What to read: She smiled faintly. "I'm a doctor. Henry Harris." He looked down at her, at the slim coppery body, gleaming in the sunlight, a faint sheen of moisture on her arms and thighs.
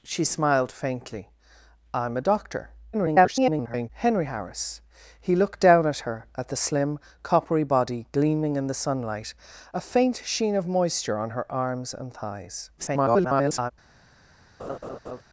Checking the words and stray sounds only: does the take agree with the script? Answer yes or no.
no